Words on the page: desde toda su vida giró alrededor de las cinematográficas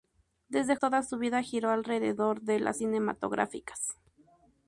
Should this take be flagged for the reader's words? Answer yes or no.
no